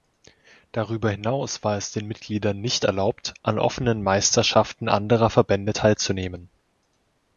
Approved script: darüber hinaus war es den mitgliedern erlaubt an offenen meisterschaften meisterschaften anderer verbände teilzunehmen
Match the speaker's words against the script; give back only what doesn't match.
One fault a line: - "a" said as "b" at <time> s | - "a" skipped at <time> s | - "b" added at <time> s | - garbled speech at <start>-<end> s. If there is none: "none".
- "nicht" added at 2.6 s
- "meisterschaften" skipped at 4.9 s